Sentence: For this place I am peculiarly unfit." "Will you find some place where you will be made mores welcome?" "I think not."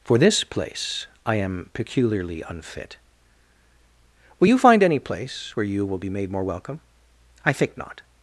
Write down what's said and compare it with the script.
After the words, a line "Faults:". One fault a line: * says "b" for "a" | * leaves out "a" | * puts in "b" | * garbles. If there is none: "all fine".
For this place I am peculiarly unfit." "Will you find any place where you will be made more welcome?" "I think not."
Faults:
* says "any" for "some"
* says "more" for "mores"